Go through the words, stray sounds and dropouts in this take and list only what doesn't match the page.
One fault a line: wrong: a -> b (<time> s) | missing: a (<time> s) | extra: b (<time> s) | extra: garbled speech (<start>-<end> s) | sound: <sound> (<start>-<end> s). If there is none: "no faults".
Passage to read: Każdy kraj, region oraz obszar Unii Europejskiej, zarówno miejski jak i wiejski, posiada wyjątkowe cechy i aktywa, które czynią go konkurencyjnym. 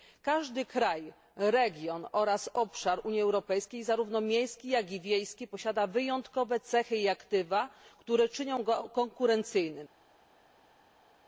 no faults